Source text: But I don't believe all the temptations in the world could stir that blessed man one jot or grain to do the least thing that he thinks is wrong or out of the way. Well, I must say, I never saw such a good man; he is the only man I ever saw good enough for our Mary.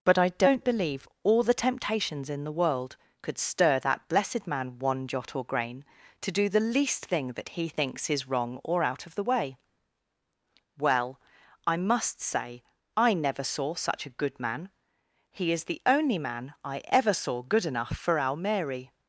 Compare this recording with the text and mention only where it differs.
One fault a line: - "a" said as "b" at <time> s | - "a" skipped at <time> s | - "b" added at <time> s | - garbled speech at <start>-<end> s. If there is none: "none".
none